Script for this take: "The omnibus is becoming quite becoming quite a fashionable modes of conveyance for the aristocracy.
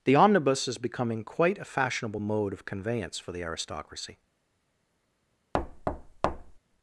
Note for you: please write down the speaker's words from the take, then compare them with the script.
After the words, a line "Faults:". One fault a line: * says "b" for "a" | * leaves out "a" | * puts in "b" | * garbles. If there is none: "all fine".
"The omnibus is becoming quite a fashionable mode of conveyance for the aristocracy.
Faults:
* leaves out "becoming quite"
* says "mode" for "modes"